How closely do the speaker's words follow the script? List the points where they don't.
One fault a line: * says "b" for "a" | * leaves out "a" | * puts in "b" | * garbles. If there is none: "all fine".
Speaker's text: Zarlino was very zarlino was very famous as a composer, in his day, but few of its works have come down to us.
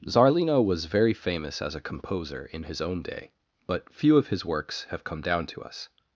* leaves out "zarlino was very"
* puts in "own"
* says "his" for "its"